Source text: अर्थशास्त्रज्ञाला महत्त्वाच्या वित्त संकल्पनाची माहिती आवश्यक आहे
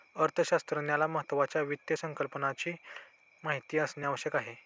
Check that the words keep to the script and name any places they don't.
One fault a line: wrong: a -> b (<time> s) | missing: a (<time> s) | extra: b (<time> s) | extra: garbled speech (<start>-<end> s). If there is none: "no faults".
extra: असणे (3.8 s)